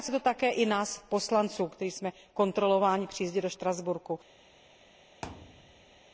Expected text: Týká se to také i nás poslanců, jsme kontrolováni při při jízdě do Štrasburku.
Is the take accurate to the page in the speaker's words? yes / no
no